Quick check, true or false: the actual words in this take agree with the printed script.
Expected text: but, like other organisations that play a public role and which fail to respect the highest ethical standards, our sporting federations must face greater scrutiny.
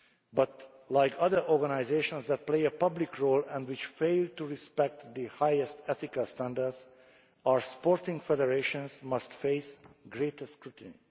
true